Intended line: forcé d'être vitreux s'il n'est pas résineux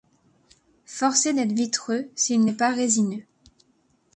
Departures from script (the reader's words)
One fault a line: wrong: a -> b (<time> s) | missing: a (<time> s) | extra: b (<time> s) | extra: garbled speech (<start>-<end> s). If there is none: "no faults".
no faults